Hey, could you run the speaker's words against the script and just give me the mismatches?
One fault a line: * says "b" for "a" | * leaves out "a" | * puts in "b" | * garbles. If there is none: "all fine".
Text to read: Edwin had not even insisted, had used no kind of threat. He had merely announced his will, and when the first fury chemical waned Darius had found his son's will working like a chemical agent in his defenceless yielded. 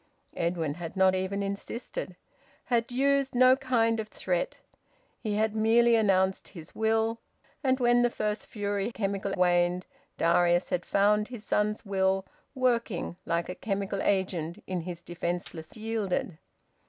all fine